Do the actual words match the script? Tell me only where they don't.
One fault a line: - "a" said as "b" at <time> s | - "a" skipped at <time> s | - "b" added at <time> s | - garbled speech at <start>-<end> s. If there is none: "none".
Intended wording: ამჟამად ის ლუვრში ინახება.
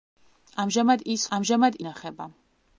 - "ლუვრში" said as "ამჟამად" at 1.4 s